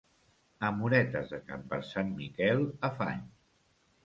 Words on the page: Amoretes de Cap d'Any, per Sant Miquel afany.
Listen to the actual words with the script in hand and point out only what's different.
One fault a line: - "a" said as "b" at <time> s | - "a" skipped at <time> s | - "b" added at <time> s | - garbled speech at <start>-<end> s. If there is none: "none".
- "d'Any" skipped at 1.6 s